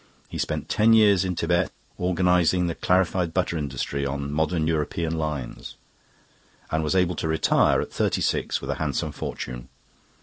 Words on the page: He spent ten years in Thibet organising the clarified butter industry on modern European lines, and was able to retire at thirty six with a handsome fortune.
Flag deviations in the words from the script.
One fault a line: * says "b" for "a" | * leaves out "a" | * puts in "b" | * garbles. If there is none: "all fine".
all fine